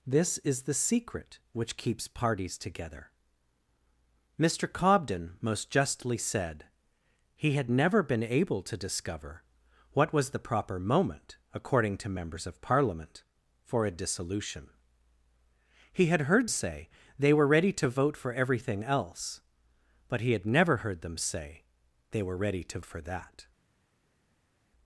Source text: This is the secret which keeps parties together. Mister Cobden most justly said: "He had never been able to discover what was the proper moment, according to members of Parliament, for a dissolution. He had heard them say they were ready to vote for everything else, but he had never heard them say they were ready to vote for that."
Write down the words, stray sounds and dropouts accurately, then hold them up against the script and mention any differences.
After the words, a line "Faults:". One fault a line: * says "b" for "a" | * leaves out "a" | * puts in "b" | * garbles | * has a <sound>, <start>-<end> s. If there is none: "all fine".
This is the secret which keeps parties together. Mister Cobden most justly said: "He had never been able to discover what was the proper moment, according to members of Parliament, for a dissolution. He had heard say they were ready to vote for everything else, but he had never heard them say they were ready to for that."
Faults:
* leaves out "them"
* leaves out "vote"